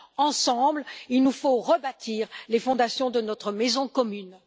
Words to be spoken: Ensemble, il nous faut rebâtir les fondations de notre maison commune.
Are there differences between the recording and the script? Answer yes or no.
no